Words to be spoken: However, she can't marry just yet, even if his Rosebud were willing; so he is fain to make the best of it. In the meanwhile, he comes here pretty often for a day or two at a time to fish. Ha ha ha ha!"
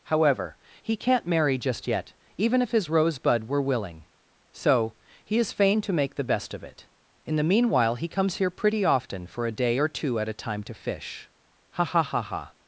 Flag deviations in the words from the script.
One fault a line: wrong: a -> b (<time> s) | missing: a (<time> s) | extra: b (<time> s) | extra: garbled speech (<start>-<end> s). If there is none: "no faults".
wrong: she -> he (0.8 s)